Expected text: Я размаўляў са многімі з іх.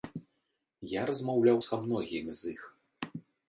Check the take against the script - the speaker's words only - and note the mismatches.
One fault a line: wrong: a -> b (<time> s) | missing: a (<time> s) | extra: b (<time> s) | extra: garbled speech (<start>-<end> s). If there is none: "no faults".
no faults